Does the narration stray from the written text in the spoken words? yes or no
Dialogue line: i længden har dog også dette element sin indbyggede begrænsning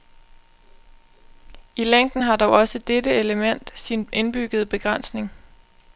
no